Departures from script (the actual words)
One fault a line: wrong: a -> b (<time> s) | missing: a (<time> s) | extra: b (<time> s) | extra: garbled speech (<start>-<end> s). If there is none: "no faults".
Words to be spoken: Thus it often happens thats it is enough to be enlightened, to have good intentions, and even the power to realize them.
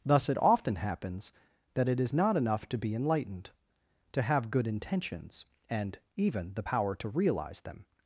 wrong: thats -> that (1.7 s)
extra: not (2.1 s)